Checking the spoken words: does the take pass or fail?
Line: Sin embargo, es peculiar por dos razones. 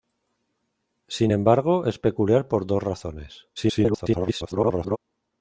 fail